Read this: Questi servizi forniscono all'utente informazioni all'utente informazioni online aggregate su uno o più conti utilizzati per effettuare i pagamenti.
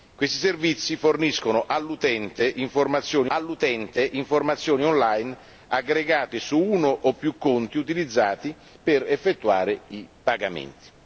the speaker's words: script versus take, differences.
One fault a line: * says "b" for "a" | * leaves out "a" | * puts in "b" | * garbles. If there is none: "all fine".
all fine